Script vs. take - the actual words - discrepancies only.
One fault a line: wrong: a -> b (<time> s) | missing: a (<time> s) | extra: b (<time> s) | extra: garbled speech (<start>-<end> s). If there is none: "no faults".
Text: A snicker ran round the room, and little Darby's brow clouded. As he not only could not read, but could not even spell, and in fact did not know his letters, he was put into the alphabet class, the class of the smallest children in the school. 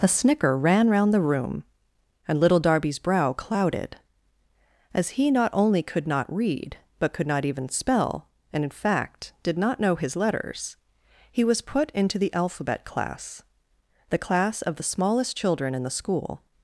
no faults